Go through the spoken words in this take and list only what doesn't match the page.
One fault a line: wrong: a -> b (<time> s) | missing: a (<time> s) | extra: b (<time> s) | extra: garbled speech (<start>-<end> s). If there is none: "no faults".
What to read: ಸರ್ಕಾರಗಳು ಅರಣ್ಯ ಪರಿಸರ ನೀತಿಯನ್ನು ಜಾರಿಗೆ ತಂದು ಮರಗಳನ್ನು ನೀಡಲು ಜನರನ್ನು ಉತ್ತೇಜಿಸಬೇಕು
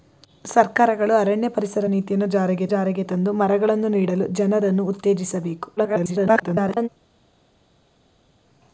extra: ಜಾರಿಗೆ (2.7 s)
extra: garbled speech (5.8-6.9 s)